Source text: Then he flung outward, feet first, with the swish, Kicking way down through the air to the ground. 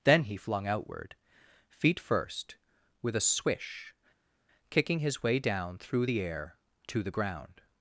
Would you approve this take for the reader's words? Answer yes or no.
no